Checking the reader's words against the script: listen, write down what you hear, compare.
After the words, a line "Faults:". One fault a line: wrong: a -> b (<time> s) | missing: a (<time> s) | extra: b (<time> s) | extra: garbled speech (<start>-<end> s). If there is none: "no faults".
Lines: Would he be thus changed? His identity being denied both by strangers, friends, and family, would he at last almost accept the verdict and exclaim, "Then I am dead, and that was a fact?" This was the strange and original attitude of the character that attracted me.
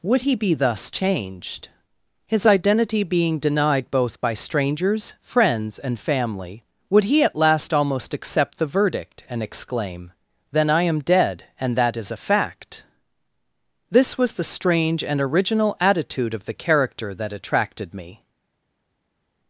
Would he be thus changed? His identity being denied both by strangers, friends, and family, would he at last almost accept the verdict and exclaim, "Then I am dead, and that is a fact?" This was the strange and original attitude of the character that attracted me.
Faults:
wrong: was -> is (11.9 s)